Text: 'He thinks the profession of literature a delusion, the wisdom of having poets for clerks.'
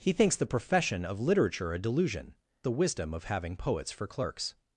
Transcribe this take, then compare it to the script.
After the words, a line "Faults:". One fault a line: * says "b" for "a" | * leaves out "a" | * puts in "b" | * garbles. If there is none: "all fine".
'He thinks the profession of literature a delusion, the wisdom of having poets for clerks.'
Faults:
all fine